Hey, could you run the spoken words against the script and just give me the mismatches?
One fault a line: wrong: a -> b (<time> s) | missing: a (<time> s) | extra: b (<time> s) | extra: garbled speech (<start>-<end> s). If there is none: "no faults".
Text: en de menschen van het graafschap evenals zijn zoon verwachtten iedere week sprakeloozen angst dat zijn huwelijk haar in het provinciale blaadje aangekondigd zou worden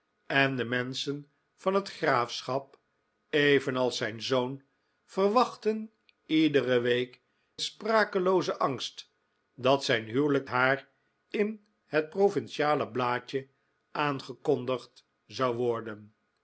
no faults